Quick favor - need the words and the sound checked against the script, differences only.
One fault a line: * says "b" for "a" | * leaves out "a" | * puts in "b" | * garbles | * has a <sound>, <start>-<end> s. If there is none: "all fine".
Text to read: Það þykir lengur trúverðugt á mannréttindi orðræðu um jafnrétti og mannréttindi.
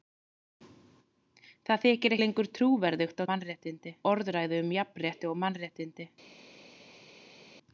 all fine